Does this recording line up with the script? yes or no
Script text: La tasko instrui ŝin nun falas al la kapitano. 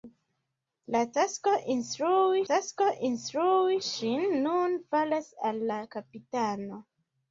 no